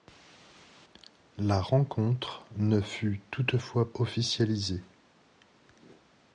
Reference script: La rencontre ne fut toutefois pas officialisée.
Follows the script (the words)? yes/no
no